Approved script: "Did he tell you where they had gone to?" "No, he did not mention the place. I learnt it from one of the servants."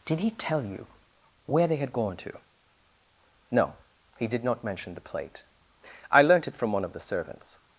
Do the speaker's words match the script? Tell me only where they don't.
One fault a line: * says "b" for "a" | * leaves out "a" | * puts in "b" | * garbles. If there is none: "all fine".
* says "plate" for "place"